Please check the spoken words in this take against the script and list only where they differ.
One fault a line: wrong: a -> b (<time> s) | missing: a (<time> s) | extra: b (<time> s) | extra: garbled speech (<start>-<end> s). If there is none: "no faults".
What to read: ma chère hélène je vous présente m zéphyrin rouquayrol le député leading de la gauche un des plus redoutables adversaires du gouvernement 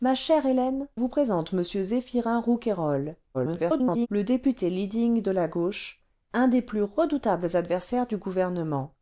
missing: je (0.9 s)
extra: garbled speech (3.3-4.1 s)